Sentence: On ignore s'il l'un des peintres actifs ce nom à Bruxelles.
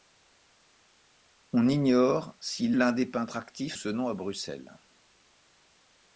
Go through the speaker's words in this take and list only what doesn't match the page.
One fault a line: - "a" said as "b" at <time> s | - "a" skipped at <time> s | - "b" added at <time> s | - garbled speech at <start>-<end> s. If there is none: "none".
none